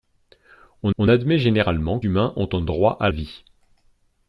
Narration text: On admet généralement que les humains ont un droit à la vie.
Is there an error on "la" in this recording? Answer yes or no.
yes